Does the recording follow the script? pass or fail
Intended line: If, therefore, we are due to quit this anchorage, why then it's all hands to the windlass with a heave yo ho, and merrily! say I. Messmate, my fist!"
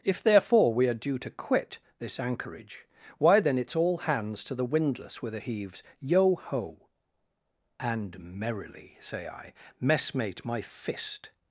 fail